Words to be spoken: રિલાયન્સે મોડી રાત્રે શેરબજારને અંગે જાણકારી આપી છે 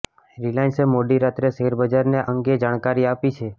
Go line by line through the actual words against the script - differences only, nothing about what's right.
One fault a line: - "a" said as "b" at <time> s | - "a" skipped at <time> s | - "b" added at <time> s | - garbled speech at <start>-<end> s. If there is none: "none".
none